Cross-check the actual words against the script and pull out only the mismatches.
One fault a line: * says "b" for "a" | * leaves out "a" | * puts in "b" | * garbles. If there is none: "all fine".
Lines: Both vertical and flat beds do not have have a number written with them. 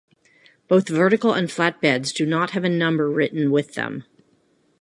* leaves out "have"